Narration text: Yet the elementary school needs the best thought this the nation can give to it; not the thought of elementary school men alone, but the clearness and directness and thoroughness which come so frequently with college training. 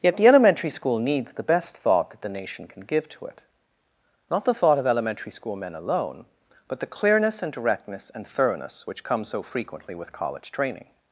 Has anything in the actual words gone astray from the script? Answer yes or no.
yes